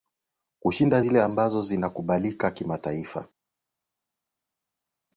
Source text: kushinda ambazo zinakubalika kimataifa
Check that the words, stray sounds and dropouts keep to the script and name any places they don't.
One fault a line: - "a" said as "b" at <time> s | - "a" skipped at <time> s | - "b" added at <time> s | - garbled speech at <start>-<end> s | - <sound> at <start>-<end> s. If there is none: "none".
- "zile" added at 1.0 s